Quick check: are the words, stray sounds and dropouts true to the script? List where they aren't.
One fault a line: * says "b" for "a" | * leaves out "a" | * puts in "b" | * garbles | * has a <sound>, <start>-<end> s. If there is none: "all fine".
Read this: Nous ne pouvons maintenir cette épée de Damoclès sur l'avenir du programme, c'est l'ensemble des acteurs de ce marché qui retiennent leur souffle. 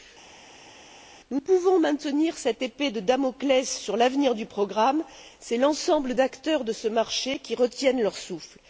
* leaves out "ne"
* leaves out "des"